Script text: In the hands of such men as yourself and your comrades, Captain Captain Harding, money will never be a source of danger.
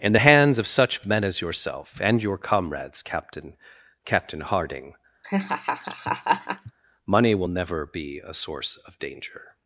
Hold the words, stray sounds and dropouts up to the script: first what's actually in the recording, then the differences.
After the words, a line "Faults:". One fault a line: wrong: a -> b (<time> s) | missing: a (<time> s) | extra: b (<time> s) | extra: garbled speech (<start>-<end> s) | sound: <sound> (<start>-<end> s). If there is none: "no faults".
In the hands of such men as yourself and your comrades, Captain Captain Harding, money will never be a source of danger.
Faults:
sound: laugh (5.2-6.7 s)